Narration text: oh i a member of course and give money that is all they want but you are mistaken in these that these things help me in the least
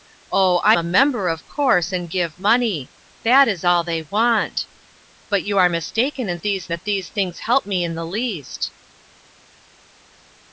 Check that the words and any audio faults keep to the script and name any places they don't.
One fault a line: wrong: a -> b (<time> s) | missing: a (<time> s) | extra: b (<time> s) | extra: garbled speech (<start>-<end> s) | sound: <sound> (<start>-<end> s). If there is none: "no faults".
no faults